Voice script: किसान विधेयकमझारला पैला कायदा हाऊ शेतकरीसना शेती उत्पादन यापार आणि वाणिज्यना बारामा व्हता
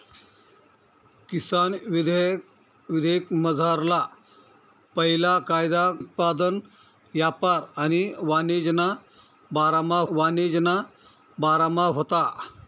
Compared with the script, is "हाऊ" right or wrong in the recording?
wrong